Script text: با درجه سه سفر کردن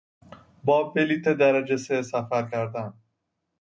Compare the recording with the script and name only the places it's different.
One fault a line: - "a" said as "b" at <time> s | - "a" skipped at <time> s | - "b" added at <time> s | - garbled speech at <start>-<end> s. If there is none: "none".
- "بلیط" added at 0.8 s